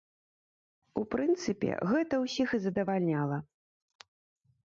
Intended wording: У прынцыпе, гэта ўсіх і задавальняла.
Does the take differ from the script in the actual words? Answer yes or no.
no